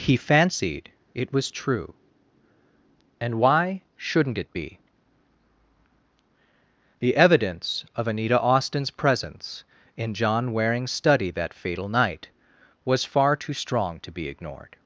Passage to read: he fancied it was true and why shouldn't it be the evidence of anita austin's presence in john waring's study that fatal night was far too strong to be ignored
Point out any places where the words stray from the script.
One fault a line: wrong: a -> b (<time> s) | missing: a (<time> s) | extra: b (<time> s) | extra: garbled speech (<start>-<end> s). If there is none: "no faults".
no faults